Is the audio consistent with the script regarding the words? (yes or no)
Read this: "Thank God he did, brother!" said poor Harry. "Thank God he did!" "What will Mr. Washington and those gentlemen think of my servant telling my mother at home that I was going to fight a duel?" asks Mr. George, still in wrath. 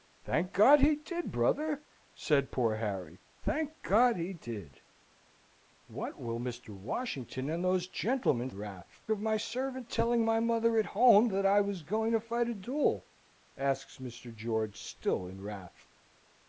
no